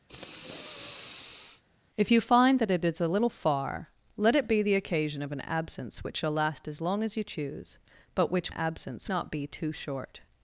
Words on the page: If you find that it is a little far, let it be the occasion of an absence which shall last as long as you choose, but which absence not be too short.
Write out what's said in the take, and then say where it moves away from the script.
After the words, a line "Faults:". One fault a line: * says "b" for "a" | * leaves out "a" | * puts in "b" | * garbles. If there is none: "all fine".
If you find that it is a little far, let it be the occasion of an absence which shall last as long as you choose, but which absence not be too short.
Faults:
all fine